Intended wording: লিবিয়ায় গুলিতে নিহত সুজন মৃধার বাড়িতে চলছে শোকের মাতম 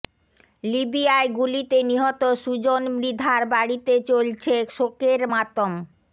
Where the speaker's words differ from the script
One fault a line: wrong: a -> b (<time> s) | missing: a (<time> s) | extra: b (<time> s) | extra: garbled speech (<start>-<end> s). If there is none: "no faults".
no faults